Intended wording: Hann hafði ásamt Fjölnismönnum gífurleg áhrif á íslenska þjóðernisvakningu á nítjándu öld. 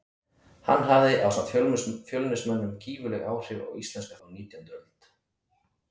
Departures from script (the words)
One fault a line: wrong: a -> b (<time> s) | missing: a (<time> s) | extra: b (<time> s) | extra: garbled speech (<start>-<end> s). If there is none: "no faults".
missing: þjóðernisvakningu (4.2 s)